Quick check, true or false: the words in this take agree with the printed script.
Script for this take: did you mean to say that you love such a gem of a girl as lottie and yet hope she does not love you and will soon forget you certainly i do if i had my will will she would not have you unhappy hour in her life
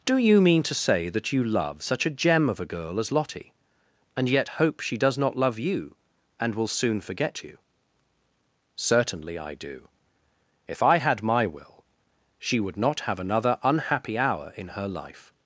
false